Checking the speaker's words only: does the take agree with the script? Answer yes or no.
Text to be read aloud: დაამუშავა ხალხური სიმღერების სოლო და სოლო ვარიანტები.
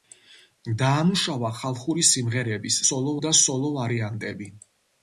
yes